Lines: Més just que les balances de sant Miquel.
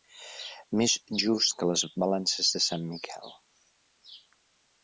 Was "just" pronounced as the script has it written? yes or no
yes